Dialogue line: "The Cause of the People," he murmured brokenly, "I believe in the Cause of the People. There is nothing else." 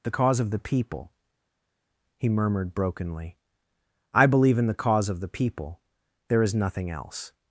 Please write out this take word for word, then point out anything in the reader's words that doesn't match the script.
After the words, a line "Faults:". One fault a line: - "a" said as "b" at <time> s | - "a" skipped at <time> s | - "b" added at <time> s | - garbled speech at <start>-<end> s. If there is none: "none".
"The Cause of the People," he murmured brokenly, "I believe in the Cause of the People. There is nothing else."
Faults:
none